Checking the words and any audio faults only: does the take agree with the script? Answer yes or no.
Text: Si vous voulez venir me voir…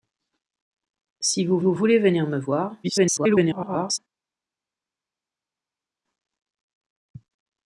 no